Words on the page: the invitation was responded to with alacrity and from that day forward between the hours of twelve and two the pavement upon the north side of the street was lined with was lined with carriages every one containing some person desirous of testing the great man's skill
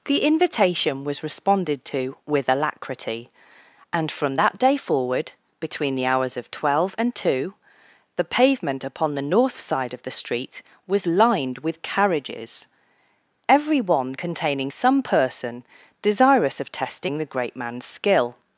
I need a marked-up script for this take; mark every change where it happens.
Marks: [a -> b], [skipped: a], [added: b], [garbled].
the invitation was responded to with alacrity and from that day forward between the hours of twelve and two the pavement upon the north side of the street was lined with [skipped: was lined with] carriages every one containing some person desirous of testing the great man's skill